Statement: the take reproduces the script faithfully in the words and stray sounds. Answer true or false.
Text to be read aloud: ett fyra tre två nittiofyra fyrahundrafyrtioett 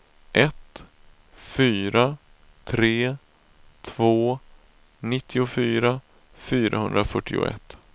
true